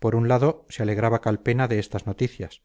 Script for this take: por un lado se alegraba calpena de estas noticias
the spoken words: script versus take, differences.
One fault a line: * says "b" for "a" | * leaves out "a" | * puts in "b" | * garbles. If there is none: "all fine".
all fine